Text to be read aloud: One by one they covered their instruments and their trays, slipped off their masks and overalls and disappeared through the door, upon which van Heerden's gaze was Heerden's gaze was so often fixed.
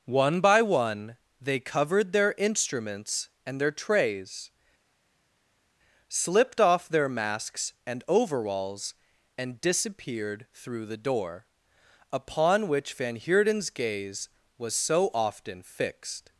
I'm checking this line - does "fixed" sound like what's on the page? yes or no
yes